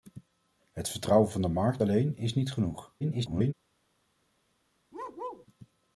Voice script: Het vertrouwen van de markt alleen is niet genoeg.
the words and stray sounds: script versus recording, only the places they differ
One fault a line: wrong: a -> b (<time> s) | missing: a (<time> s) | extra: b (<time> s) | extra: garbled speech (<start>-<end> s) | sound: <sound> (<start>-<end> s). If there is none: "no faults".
extra: garbled speech (3.0-3.5 s)
sound: bark (4.9-5.5 s)